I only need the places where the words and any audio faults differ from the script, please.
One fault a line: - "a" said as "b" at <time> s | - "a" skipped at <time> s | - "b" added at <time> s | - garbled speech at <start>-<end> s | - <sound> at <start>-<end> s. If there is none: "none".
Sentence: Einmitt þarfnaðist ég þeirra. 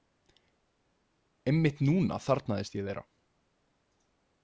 - "núna" added at 1.9 s